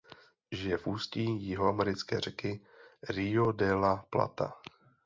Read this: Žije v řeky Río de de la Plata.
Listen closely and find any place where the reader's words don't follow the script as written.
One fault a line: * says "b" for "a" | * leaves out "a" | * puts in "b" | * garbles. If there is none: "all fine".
* puts in "ústí jihoamerické"
* leaves out "de"